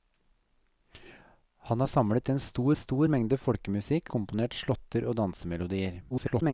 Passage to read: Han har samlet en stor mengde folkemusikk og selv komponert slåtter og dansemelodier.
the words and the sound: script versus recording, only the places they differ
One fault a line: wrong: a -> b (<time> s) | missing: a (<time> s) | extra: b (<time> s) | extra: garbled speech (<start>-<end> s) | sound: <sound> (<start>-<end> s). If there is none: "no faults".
extra: stor (2.8 s)
missing: og selv (4.1 s)
extra: garbled speech (6.1-6.5 s)